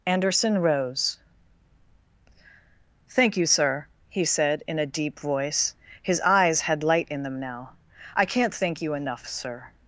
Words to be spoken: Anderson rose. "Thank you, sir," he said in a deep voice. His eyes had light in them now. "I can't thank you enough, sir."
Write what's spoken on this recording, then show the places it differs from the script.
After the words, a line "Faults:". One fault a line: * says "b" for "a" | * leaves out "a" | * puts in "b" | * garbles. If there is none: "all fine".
Anderson rose. "Thank you, sir," he said in a deep voice. His eyes had light in them now. "I can't thank you enough, sir."
Faults:
all fine